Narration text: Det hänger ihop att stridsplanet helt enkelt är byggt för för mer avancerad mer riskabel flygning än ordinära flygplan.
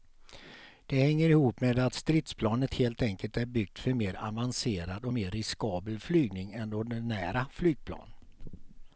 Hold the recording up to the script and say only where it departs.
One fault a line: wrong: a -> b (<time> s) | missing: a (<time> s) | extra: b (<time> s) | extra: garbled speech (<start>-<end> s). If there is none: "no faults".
extra: med (1.6 s)
missing: för (3.9 s)
extra: och (5.0 s)